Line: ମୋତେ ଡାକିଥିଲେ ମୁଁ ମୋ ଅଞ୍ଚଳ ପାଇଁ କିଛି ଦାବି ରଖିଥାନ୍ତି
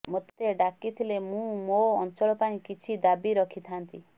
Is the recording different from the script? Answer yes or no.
no